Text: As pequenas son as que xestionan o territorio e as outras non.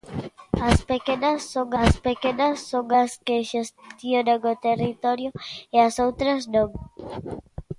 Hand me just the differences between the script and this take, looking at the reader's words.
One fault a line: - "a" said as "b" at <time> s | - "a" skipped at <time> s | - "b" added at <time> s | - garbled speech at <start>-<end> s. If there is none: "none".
- "pequenas son as" added at 2.1 s